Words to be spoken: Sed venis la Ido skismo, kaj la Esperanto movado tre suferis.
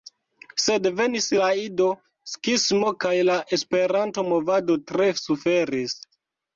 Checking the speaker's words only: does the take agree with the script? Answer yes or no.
yes